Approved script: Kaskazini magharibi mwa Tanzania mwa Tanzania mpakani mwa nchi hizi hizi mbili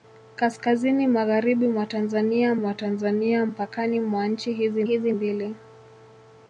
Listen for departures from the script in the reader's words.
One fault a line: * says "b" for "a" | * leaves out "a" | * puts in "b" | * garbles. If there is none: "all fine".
all fine